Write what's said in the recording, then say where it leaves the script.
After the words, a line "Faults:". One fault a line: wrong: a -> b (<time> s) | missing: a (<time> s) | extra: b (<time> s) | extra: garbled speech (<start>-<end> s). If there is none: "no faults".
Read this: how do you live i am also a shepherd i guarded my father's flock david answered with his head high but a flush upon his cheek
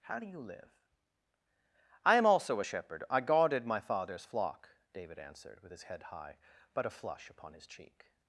how do you live i am also a shepherd i guarded my father's flock david answered with his head high but a flush upon his cheek
Faults:
no faults